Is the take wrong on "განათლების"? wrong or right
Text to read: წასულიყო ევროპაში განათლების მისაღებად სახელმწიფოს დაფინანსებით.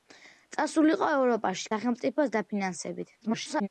wrong